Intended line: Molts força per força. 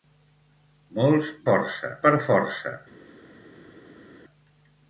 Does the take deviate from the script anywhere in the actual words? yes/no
no